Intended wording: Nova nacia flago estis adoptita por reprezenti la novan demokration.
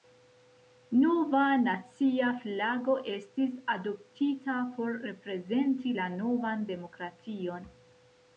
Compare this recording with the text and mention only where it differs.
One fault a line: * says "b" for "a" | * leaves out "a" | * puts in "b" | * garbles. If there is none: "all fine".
all fine